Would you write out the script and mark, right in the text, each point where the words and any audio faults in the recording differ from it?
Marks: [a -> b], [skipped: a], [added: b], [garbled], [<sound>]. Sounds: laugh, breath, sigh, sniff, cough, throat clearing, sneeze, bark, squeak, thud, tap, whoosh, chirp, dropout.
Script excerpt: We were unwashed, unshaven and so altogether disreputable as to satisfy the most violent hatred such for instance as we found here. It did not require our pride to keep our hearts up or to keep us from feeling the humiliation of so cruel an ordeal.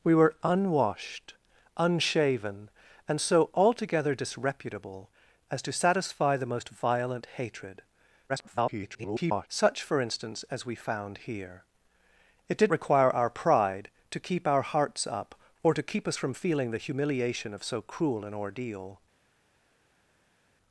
We were unwashed, unshaven and so altogether disreputable as to satisfy the most violent hatred [garbled] such for instance as we found here. It did [skipped: not] require our pride to keep our hearts up or to keep us from feeling the humiliation of so cruel an ordeal.